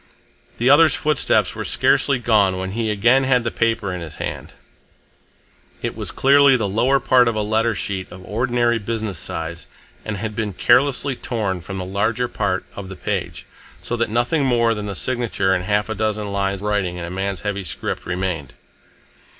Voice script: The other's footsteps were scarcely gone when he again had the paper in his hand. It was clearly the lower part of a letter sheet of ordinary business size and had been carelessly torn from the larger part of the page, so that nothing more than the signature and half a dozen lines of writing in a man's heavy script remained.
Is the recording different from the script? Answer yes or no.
yes